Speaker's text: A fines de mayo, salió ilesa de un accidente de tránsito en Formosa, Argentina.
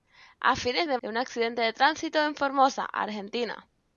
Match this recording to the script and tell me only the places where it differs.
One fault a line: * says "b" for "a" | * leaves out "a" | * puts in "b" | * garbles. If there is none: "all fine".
* leaves out "mayo salió ilesa"